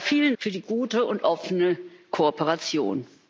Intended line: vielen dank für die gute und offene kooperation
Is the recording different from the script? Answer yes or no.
yes